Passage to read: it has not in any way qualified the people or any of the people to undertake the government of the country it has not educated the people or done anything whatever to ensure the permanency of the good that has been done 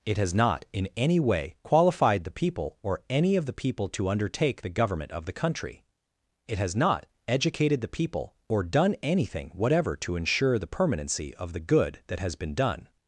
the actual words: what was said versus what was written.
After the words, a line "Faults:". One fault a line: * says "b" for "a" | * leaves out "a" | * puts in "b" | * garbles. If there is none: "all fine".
it has not in any way qualified the people or any of the people to undertake the government of the country it has not educated the people or done anything whatever to ensure the permanency of the good that has been done
Faults:
all fine